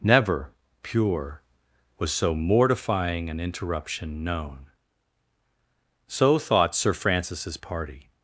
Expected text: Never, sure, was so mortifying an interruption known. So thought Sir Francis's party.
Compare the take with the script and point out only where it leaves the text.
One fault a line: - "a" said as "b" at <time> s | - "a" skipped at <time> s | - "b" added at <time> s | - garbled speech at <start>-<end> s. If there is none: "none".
- "sure" said as "pure" at 0.8 s